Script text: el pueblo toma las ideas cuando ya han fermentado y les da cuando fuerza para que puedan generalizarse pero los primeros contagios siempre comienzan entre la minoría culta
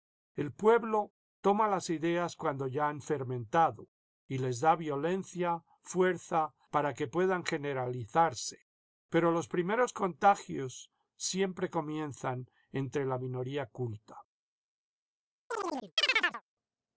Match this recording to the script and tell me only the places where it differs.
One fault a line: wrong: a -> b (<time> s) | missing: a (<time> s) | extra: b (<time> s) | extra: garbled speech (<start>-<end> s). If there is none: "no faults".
wrong: cuando -> violencia (4.8 s)